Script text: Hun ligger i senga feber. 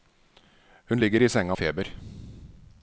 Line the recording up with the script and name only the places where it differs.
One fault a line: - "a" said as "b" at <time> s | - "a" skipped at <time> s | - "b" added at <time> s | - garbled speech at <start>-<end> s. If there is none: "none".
none